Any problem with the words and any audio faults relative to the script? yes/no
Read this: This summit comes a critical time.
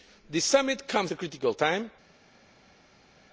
no